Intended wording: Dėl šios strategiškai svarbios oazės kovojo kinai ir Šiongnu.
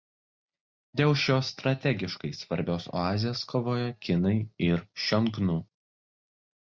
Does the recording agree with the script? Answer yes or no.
yes